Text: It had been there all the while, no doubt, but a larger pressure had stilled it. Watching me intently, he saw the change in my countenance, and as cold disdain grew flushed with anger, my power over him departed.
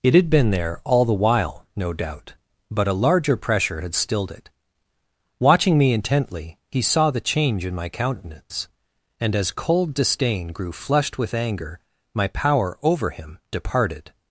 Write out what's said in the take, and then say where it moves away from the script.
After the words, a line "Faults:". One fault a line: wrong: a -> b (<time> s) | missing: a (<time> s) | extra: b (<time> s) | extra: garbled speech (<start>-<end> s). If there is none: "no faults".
It had been there all the while, no doubt, but a larger pressure had stilled it. Watching me intently, he saw the change in my countenance, and as cold disdain grew flushed with anger, my power over him departed.
Faults:
no faults